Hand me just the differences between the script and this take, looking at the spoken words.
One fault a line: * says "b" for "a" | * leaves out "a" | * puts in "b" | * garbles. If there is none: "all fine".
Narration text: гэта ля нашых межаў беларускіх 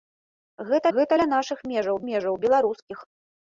* puts in "гэта"
* puts in "межаў"